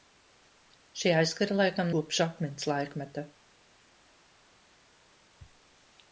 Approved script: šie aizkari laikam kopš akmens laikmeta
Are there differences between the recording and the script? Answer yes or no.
no